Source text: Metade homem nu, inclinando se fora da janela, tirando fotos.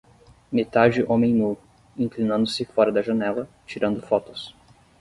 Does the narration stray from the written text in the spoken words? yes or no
no